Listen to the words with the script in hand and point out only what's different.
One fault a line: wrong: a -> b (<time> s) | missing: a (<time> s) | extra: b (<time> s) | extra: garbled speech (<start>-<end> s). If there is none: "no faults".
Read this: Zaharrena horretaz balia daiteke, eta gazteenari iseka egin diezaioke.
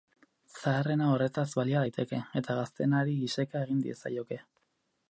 no faults